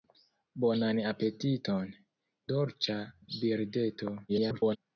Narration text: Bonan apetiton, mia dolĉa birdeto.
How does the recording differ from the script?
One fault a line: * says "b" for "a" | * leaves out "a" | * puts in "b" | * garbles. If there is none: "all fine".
* leaves out "mia"
* garbles